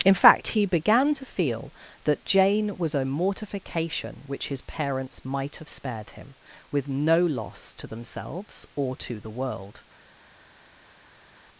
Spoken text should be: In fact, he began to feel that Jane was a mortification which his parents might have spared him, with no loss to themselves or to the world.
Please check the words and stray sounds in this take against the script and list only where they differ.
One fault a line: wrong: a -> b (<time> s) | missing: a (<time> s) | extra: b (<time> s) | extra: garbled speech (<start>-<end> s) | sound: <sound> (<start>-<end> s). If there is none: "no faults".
no faults